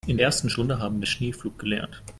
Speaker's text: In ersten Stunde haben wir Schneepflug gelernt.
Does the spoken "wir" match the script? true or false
true